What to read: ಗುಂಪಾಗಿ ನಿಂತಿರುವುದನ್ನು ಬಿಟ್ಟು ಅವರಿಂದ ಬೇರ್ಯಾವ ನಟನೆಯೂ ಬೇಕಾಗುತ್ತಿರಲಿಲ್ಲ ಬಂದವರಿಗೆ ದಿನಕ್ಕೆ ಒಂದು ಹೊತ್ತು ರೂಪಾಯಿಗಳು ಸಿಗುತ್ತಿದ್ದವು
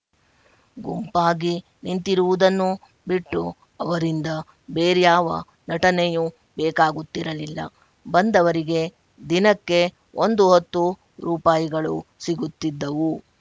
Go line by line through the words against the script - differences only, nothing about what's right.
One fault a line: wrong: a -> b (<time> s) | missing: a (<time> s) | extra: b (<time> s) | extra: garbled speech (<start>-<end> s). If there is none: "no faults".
no faults